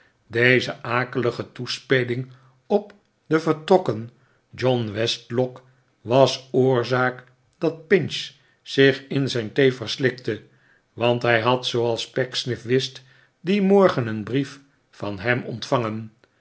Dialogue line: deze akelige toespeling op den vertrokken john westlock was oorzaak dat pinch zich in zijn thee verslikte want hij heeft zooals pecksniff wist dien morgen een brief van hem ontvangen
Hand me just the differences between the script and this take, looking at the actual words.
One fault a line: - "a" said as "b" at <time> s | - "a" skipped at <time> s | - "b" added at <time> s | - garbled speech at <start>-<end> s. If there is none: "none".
- "heeft" said as "had" at 11.4 s